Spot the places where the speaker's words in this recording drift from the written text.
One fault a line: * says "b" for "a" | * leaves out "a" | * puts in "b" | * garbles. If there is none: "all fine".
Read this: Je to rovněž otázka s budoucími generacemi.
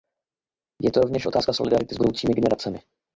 * puts in "solidarity"